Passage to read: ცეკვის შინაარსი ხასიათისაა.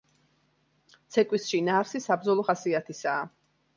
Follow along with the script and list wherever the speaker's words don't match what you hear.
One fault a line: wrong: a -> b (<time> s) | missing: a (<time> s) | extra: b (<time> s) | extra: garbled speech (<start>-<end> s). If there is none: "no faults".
extra: საბრძოლო (2.1 s)